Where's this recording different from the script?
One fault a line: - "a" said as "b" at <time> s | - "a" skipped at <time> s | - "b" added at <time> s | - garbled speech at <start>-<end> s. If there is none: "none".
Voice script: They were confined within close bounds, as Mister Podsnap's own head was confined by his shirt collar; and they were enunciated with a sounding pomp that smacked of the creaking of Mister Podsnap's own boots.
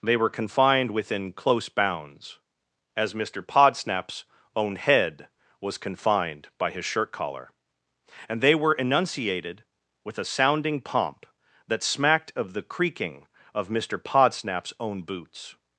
none